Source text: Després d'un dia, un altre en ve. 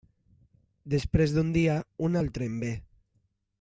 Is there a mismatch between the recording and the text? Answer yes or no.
no